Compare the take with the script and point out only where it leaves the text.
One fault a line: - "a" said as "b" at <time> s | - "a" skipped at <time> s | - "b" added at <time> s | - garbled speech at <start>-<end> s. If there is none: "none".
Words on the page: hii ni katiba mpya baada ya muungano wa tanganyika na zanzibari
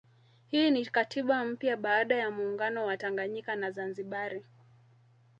none